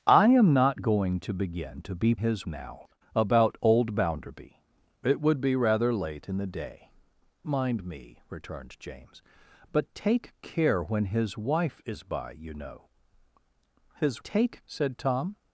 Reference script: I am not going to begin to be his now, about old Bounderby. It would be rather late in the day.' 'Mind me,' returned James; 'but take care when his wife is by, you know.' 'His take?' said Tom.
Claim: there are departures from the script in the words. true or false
false